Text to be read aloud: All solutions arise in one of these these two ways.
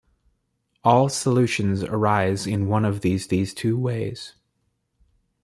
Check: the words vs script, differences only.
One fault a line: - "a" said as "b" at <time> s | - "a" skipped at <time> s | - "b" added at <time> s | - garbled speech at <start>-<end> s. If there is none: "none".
none